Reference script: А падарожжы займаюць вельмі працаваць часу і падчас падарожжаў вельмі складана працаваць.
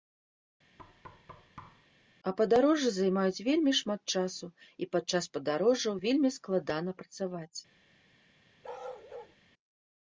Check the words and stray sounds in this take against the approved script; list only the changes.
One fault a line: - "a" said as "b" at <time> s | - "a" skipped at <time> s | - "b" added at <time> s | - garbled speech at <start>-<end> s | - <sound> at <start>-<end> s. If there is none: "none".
- thud at 0.8-1.9 s
- "працаваць" said as "шмат" at 3.8 s
- bark at 8.6-9.4 s